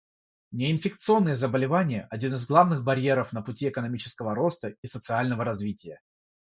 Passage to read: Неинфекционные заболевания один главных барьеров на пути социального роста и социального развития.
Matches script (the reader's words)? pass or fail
fail